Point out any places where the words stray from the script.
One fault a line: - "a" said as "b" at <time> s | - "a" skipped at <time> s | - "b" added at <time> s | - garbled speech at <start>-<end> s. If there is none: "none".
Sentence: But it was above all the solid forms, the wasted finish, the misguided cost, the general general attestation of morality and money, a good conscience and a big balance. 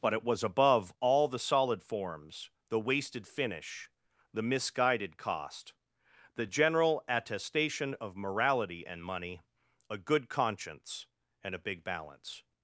- "general" skipped at 7.0 s